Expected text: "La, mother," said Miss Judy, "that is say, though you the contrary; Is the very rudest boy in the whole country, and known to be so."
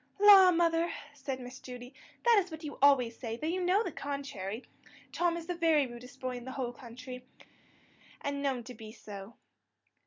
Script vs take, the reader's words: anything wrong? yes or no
yes